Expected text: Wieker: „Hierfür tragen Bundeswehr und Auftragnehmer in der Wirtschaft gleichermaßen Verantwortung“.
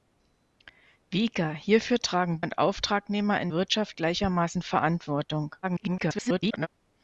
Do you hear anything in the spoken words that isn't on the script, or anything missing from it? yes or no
yes